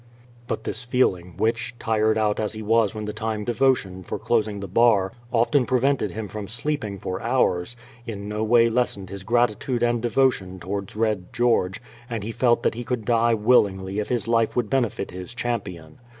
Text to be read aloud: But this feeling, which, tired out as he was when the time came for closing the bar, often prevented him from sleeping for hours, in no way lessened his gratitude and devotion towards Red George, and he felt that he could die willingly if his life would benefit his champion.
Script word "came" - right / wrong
wrong